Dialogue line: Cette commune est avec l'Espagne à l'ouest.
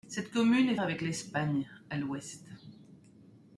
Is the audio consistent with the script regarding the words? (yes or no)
yes